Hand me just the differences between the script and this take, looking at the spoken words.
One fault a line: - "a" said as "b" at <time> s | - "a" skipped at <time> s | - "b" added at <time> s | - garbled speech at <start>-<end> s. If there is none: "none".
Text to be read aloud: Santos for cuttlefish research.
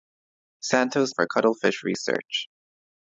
none